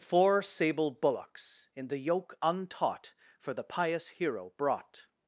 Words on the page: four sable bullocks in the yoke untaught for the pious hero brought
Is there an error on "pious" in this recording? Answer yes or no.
no